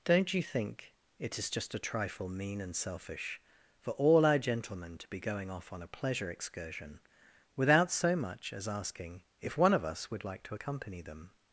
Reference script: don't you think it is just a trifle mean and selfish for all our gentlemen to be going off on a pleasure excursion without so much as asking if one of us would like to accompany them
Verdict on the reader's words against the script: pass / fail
pass